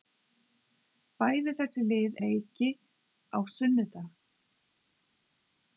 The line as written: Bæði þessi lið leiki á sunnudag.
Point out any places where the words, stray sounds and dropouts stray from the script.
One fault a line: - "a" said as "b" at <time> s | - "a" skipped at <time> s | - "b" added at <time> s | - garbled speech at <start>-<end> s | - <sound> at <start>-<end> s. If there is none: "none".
none